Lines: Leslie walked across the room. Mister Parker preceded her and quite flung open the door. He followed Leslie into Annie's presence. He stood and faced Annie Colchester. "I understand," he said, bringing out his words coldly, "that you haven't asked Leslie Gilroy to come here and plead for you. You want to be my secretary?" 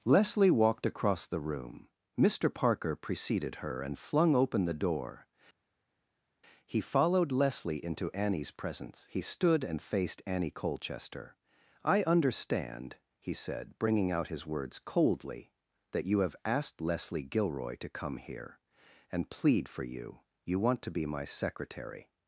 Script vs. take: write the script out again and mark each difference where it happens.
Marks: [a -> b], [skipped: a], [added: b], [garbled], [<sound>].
Leslie walked across the room. Mister Parker preceded her and [skipped: quite] flung open the door. He followed Leslie into Annie's presence. He stood and faced Annie Colchester. "I understand," he said, bringing out his words coldly, "that you [haven't -> have] asked Leslie Gilroy to come here and plead for you. You want to be my secretary?"